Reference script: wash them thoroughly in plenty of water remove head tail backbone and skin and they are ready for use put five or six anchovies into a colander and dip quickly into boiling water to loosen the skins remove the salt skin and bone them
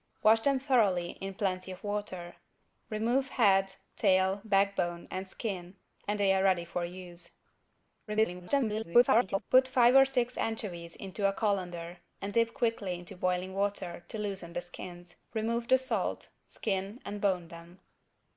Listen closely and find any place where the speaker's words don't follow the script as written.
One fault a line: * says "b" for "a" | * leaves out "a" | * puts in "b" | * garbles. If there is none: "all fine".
* garbles